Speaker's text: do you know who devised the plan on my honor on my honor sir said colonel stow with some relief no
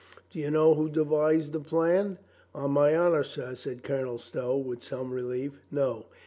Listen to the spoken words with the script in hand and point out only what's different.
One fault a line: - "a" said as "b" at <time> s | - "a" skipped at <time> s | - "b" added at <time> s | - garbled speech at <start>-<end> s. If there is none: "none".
- "on my honor" skipped at 3.2 s